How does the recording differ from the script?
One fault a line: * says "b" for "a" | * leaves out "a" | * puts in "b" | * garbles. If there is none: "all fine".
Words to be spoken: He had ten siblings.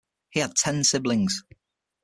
all fine